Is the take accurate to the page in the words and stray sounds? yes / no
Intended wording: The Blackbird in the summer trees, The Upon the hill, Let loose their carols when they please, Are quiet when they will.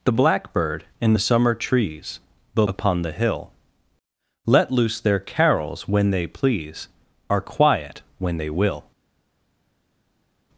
yes